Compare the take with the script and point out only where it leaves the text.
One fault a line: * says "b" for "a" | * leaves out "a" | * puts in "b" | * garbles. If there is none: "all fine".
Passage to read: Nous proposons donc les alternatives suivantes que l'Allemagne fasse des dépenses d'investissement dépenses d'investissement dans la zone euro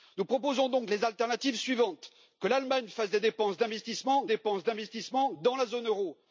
all fine